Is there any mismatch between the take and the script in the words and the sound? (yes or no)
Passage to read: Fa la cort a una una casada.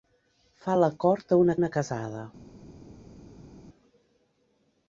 no